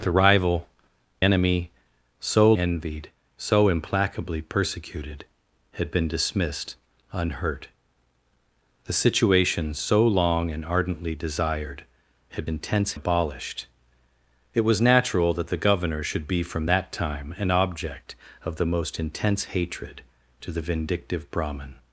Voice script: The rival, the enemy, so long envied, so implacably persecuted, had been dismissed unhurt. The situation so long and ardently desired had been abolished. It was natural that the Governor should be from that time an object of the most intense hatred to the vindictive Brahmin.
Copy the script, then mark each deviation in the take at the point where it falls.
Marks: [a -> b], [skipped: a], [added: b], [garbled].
The rival, [skipped: the] enemy, so [skipped: long] envied, so implacably persecuted, had been dismissed unhurt. The situation so long and ardently desired had [been -> intense] abolished. It was natural that the Governor should be from that time an object of the most intense hatred to the vindictive Brahmin.